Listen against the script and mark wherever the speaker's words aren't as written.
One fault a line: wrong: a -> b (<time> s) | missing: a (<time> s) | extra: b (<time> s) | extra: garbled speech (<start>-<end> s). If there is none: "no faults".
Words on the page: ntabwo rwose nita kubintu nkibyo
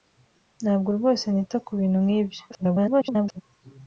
extra: garbled speech (2.5-3.4 s)